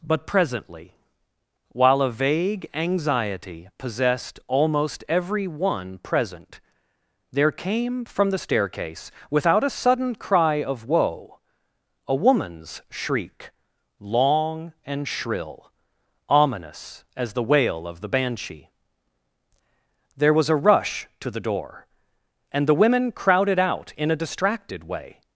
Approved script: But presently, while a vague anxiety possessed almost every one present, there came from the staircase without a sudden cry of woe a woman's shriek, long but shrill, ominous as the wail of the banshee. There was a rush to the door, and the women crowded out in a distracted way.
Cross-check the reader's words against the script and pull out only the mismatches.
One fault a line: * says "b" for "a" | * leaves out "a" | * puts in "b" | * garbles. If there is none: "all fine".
* says "and" for "but"